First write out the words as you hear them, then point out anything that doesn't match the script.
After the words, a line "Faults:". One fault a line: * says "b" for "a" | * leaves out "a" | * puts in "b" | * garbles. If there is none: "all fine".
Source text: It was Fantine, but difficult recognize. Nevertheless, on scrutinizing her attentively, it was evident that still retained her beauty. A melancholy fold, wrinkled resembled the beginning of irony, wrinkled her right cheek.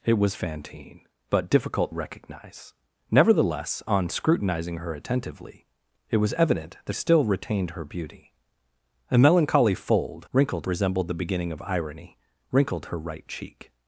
It was Fantine, but difficult recognize. Nevertheless, on scrutinizing her attentively, it was evident that still retained her beauty. A melancholy fold, wrinkled resembled the beginning of irony, wrinkled her right cheek.
Faults:
all fine